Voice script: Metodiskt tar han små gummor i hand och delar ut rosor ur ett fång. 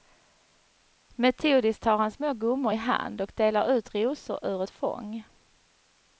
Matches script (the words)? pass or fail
pass